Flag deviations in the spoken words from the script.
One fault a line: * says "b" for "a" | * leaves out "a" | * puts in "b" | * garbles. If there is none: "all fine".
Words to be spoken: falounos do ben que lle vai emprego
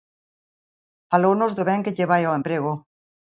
* puts in "ao"